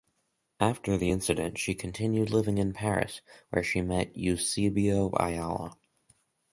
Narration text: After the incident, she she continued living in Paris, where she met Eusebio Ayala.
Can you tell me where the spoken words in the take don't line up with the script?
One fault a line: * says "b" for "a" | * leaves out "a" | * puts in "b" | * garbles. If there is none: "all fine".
* leaves out "she"